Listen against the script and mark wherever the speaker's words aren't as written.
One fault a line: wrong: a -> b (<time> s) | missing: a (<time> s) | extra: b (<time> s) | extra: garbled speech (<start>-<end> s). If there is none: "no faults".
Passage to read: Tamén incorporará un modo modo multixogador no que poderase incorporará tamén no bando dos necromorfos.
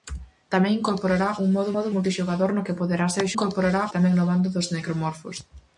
no faults